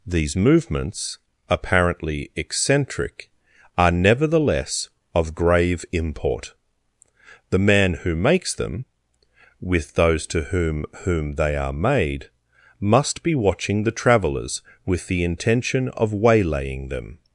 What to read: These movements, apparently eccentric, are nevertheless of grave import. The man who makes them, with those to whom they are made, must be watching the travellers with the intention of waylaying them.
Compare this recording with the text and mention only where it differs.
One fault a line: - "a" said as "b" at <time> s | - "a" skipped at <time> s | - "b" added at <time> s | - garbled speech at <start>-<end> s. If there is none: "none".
- "whom" added at 11.0 s